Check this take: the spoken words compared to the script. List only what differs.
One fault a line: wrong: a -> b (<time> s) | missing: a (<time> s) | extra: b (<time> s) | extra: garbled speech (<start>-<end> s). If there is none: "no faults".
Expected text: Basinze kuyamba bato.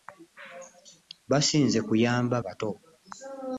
no faults